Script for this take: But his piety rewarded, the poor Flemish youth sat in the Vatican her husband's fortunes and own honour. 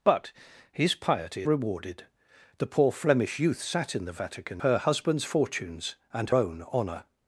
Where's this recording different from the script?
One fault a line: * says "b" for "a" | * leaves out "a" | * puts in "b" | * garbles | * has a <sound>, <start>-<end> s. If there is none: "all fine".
all fine